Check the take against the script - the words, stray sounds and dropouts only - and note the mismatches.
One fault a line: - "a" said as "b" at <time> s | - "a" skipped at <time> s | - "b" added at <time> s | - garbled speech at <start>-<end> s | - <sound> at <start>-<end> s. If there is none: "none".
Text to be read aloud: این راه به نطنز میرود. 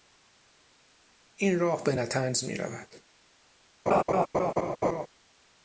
- laugh at 3.9-5.1 s